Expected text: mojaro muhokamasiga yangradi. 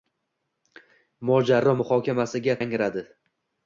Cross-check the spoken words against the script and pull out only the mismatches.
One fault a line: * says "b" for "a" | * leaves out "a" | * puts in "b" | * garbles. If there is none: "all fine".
all fine